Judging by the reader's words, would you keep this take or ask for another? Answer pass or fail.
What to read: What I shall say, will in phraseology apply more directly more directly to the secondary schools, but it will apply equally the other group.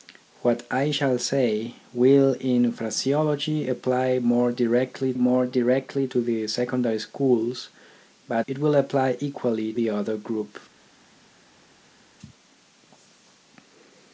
pass